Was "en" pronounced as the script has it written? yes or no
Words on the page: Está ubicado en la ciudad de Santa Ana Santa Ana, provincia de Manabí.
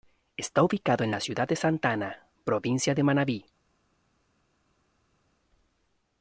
yes